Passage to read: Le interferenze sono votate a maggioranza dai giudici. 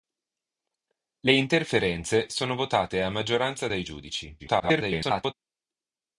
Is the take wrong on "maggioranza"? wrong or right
right